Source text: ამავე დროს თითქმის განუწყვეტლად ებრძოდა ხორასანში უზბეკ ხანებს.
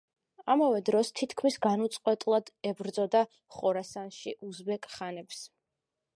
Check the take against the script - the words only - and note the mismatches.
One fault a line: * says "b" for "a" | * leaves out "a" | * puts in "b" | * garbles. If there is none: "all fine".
all fine